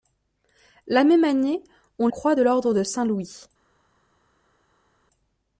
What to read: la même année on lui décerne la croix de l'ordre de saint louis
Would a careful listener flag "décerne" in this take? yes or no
yes